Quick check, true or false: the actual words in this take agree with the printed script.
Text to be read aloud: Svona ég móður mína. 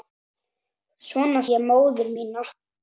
true